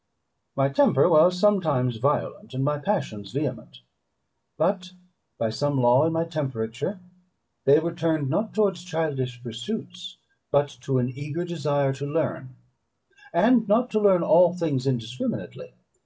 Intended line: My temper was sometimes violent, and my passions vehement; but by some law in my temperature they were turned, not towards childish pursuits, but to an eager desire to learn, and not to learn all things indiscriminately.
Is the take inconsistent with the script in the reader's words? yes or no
no